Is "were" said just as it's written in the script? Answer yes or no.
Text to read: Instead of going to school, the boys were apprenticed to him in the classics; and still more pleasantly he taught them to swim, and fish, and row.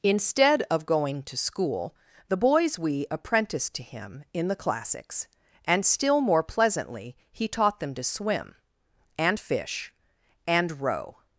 no